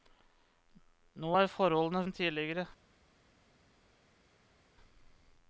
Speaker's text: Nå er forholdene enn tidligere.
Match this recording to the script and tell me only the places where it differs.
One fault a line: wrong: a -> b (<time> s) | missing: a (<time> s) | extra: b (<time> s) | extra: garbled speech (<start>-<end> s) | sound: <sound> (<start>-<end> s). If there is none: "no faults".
no faults